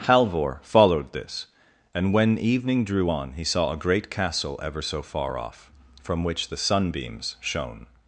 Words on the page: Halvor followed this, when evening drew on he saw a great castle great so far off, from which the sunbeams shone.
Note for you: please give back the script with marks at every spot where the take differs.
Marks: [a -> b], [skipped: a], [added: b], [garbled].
Halvor followed this, [added: and] when evening drew on he saw a great castle [great -> ever] so far off, from which the sunbeams shone.